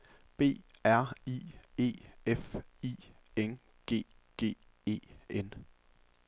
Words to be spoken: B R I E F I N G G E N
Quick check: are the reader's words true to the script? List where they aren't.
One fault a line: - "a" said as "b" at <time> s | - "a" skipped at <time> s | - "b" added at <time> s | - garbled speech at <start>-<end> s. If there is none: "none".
none